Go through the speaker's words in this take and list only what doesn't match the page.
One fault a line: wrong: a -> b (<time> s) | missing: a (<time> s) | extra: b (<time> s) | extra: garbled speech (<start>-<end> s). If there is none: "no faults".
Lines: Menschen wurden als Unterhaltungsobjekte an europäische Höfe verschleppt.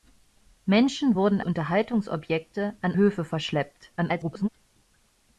missing: als (1.4 s)
missing: europäische (3.0 s)
extra: garbled speech (4.0-4.5 s)